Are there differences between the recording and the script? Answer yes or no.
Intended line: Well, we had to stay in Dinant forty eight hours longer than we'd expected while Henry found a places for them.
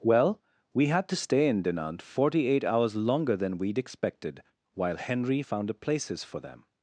no